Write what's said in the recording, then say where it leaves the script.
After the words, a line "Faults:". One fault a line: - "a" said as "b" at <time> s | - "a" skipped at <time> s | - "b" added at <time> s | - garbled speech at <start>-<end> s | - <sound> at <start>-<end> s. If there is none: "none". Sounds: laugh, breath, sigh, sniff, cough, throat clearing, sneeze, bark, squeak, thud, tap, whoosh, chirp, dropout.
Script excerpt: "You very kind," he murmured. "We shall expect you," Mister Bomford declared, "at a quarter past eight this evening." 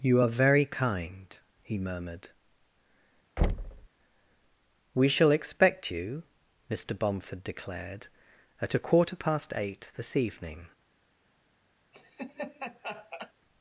"You are very kind," he murmured. "We shall expect you," Mister Bomford declared, "at a quarter past eight this evening."
Faults:
- "are" added at 0.2 s
- thud at 3.4-3.9 s
- laugh at 11.9-13.3 s